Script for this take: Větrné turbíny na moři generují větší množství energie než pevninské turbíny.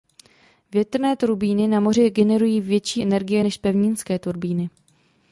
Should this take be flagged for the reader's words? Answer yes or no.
yes